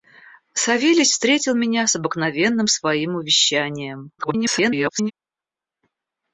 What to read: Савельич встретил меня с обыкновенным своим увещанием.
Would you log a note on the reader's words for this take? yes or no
yes